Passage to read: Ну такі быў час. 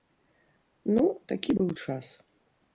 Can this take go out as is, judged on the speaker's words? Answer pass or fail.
pass